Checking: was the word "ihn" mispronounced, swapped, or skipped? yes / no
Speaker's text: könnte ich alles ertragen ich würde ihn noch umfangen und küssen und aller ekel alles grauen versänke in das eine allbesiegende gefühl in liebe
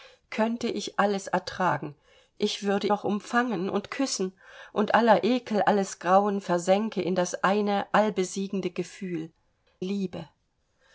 yes